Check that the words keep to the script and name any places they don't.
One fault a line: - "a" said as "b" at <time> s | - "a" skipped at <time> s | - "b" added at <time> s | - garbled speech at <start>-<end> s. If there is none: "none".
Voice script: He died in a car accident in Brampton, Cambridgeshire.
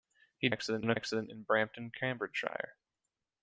- "died" said as "accident" at 0.5 s
- "car" skipped at 1.0 s